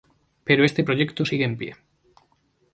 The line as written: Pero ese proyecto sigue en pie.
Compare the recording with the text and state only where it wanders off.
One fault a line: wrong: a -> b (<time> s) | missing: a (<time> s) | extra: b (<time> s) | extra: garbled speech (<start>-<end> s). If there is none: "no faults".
wrong: ese -> este (0.6 s)